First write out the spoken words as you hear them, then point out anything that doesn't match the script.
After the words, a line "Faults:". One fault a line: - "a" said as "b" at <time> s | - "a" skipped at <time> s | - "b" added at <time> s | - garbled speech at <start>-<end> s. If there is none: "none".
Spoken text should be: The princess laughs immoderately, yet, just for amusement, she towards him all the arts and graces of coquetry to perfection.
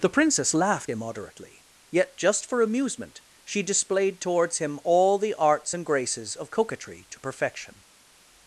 The princess laughed immoderately, yet, just for amusement, she displayed towards him all the arts and graces of coquetry to perfection.
Faults:
- "laughs" said as "laughed" at 0.6 s
- "displayed" added at 3.6 s